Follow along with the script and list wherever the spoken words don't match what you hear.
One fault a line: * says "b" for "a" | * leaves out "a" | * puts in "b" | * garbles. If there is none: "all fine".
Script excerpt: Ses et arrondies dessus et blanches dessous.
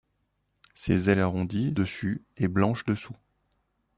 all fine